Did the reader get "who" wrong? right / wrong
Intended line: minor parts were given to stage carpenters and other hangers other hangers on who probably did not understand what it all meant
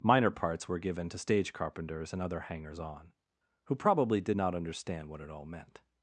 right